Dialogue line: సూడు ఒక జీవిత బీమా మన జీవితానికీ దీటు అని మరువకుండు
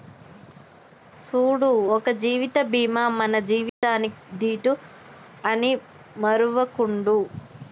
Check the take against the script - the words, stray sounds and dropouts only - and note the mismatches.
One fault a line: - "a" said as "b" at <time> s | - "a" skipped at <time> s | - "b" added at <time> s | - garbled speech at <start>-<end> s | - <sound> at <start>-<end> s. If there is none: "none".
- dropout at 3.7-3.8 s